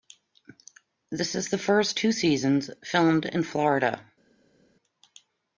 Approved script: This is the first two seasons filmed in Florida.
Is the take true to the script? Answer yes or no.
yes